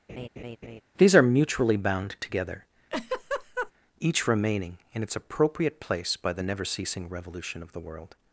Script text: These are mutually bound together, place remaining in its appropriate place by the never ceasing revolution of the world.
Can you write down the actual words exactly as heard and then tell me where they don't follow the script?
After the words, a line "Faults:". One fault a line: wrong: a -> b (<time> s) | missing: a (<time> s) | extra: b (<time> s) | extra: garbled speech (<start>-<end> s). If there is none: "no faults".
These are mutually bound together, each remaining in its appropriate place by the never ceasing revolution of the world.
Faults:
wrong: place -> each (4.0 s)